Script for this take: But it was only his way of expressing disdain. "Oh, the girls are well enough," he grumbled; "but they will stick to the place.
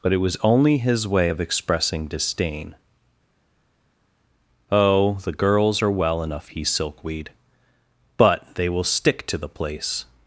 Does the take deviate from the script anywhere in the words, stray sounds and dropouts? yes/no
yes